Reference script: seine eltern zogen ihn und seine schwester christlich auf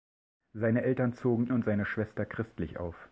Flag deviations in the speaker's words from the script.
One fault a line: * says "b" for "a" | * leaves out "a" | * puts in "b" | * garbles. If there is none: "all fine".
* leaves out "ihn"